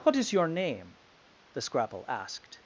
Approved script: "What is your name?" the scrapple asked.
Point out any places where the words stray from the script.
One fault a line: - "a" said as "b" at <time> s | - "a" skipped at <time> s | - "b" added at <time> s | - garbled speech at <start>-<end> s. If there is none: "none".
none